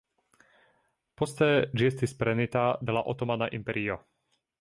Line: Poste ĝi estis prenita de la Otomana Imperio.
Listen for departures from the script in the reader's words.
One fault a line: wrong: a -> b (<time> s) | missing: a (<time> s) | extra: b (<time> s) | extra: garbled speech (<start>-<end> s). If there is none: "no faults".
no faults